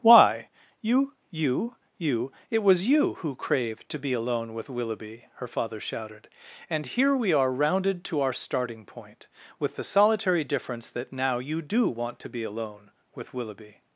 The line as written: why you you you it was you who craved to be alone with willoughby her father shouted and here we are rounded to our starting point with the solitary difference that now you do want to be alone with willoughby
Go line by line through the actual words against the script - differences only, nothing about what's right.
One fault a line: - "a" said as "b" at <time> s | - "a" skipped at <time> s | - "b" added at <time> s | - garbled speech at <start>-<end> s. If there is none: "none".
none